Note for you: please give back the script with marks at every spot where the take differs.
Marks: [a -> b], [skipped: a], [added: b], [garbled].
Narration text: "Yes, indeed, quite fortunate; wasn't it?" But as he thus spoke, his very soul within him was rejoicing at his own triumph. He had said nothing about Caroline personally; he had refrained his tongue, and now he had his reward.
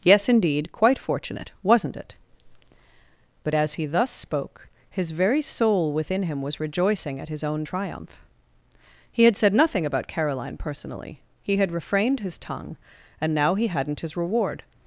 "Yes, indeed, quite fortunate; wasn't it?" But as he thus spoke, his very soul within him was rejoicing at his own triumph. He had said nothing about Caroline personally; he had refrained his tongue, and now he [had -> hadn't] his reward.